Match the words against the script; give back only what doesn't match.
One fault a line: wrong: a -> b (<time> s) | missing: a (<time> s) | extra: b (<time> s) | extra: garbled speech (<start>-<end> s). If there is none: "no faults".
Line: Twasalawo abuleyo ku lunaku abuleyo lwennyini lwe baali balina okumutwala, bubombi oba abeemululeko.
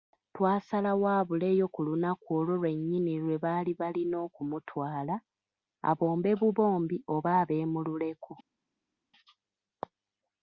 wrong: abuleyo -> olwo (2.4 s)
extra: abombe (5.9 s)